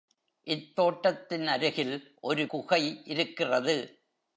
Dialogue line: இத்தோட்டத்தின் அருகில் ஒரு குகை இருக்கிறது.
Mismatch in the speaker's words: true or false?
false